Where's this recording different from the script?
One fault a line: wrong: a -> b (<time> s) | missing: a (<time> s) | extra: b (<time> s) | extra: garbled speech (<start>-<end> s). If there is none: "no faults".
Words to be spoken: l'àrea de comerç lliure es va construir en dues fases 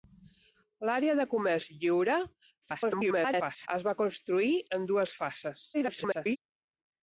extra: garbled speech (2.6-3.7 s)
extra: garbled speech (5.7-6.4 s)